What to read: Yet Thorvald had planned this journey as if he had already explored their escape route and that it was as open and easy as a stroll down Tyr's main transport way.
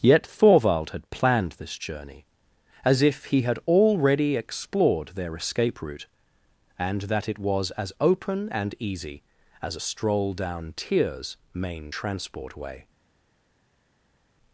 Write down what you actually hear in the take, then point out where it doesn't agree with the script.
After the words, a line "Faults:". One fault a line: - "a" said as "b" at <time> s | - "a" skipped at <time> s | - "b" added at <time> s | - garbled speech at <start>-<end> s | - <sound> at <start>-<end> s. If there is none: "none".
Yet Thorvald had planned this journey as if he had already explored their escape route and that it was as open and easy as a stroll down Tyr's main transport way.
Faults:
none